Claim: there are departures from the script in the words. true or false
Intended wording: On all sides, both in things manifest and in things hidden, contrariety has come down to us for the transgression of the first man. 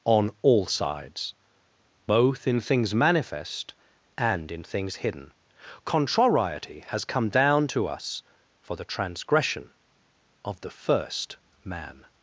false